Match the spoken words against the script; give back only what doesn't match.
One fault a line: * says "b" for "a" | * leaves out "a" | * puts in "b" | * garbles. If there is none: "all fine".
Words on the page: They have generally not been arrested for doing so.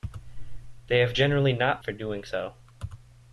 * leaves out "been arrested"